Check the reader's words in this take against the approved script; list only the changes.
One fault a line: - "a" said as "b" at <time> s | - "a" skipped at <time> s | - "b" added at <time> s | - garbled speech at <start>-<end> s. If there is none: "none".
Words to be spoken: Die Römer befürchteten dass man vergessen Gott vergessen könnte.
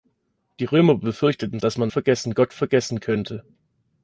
none